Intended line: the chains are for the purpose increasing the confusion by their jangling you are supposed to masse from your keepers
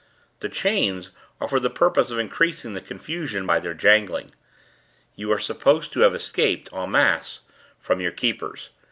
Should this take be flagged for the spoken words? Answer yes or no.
yes